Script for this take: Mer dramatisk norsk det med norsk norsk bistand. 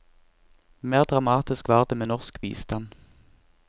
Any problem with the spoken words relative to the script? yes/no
yes